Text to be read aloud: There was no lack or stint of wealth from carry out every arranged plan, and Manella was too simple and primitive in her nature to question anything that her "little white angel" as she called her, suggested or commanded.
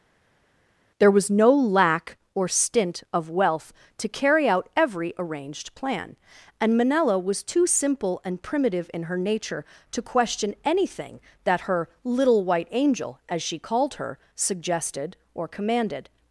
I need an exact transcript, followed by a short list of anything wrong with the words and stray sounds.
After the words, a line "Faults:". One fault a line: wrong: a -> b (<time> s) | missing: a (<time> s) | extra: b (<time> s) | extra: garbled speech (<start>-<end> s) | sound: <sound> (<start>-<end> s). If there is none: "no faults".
There was no lack or stint of wealth to carry out every arranged plan, and Manella was too simple and primitive in her nature to question anything that her "little white angel" as she called her, suggested or commanded.
Faults:
wrong: from -> to (4.0 s)